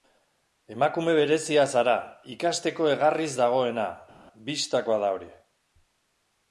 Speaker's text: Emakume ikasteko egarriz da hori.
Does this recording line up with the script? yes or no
no